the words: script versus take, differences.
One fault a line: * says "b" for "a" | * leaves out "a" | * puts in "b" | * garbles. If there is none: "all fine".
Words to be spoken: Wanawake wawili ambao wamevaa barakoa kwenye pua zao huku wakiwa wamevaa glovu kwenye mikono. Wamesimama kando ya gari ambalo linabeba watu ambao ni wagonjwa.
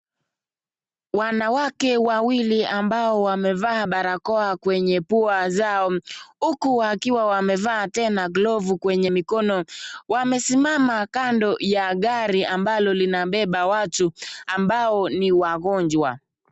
* puts in "tena"